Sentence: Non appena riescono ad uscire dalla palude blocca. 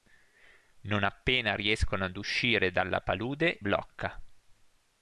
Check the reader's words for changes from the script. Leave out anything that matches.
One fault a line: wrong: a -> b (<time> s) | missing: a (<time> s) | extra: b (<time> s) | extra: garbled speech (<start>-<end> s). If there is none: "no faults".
no faults